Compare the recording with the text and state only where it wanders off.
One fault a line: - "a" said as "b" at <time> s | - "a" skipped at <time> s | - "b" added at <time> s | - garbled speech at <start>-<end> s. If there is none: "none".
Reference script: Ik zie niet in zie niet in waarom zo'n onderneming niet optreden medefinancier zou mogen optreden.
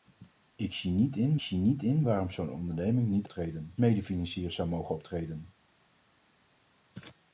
none